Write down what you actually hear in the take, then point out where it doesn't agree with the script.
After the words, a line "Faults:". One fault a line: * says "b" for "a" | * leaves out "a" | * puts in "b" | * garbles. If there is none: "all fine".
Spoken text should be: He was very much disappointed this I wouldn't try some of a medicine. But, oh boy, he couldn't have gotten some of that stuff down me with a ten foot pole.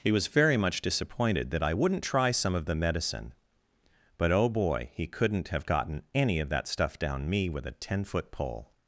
He was very much disappointed that I wouldn't try some of the medicine. But, oh boy, he couldn't have gotten any of that stuff down me with a ten foot pole.
Faults:
* says "that" for "this"
* says "the" for "a"
* says "any" for "some"